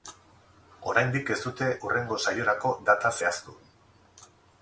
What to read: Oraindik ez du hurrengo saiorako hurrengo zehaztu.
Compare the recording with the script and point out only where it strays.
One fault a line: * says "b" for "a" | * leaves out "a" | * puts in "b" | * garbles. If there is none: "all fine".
* says "dute" for "du"
* says "data" for "hurrengo"